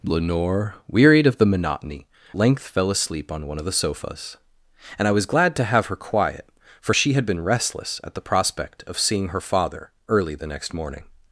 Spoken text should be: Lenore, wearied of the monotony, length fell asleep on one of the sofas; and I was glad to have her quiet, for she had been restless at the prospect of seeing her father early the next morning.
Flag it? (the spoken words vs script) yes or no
no